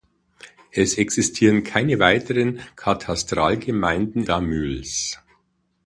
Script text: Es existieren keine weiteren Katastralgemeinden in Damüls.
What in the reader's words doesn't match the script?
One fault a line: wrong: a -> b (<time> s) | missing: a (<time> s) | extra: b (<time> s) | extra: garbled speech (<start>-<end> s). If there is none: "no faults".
missing: in (4.2 s)